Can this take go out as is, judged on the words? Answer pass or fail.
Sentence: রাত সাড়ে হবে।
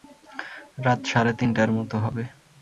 fail